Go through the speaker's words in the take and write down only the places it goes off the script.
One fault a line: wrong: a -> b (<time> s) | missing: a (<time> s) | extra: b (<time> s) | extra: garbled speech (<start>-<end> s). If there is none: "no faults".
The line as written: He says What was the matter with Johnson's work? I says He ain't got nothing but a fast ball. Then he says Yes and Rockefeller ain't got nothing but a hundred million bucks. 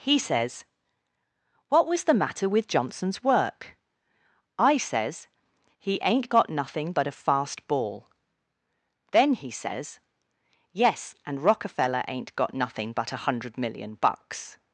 no faults